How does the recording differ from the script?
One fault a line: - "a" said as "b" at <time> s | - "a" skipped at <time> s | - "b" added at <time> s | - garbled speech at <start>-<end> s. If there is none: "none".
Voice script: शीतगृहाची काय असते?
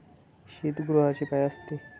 none